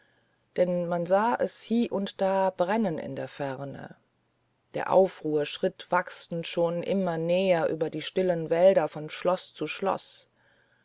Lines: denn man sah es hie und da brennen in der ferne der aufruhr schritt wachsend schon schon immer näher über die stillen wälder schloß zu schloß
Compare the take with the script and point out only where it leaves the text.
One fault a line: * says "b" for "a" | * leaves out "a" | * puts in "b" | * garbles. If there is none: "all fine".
* leaves out "schon"
* puts in "von"